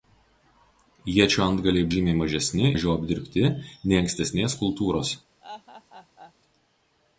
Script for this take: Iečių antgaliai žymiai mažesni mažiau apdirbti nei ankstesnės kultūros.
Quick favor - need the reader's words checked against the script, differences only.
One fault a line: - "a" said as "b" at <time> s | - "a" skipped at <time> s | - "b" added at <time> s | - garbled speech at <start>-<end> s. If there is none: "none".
none